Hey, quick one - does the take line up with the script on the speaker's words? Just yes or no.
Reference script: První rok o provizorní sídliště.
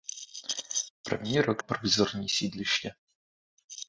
yes